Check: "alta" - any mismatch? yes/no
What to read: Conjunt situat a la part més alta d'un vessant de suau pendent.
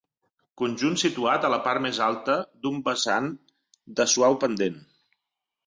no